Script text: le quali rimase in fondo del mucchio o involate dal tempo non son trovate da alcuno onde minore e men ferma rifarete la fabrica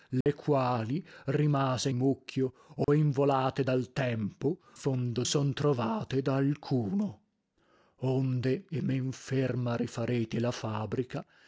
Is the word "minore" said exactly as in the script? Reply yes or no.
no